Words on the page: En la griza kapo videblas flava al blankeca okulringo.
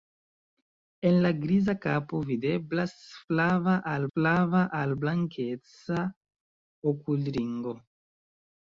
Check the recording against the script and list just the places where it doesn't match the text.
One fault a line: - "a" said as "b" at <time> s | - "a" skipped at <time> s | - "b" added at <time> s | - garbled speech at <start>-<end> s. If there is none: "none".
- "flava al" added at 4.1 s